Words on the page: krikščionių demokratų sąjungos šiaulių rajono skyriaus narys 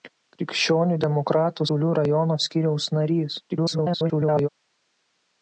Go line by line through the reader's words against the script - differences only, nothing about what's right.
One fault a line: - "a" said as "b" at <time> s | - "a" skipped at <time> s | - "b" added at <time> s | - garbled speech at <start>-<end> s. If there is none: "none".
- "sąjungos" skipped at 1.7 s
- garbled speech at 3.5-4.5 s